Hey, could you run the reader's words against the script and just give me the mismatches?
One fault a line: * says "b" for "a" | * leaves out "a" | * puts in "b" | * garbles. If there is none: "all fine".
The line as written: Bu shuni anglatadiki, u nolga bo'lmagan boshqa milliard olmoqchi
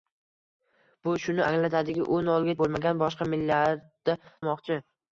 all fine